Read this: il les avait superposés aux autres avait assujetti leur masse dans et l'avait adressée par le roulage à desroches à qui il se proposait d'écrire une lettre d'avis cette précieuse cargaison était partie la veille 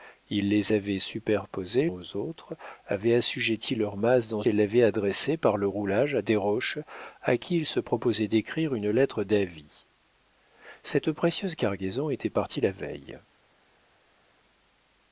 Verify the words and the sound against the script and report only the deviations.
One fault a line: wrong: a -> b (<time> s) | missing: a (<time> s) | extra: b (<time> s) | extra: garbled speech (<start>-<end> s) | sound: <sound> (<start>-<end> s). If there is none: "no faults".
no faults